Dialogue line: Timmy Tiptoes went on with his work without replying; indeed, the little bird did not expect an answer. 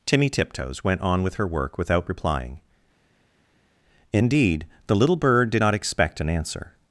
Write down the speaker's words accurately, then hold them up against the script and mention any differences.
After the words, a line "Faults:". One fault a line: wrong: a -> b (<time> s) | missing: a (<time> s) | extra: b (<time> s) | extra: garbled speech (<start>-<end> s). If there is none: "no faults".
Timmy Tiptoes went on with her work without replying; indeed, the little bird did not expect an answer.
Faults:
wrong: his -> her (1.4 s)